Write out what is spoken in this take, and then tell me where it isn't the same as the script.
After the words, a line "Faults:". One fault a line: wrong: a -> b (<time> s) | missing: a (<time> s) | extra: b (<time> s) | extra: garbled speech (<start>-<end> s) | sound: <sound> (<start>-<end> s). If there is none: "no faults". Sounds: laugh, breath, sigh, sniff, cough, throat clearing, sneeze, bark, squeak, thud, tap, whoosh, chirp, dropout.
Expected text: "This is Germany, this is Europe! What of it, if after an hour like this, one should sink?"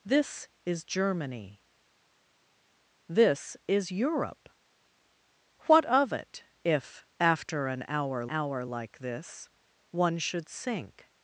"This is Germany, this is Europe! What of it, if after an hour hour like this, one should sink?"
Faults:
extra: hour (8.3 s)